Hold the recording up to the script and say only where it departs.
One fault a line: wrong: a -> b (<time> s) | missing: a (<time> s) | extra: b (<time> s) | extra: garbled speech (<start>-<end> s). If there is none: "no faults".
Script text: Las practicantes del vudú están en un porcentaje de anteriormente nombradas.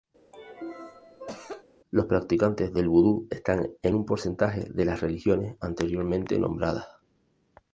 wrong: Las -> Los (1.9 s)
extra: las religiones (4.8 s)